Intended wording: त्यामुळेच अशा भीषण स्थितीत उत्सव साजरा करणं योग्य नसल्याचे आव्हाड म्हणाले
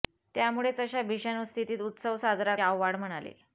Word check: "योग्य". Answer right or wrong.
wrong